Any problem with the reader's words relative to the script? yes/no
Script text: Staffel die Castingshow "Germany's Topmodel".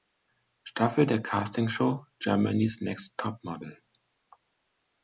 yes